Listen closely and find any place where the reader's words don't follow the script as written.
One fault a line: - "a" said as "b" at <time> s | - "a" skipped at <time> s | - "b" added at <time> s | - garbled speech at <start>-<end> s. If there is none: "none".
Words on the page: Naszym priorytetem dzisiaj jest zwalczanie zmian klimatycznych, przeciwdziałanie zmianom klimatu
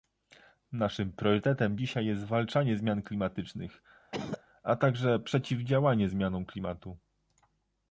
- "a także" added at 4.6 s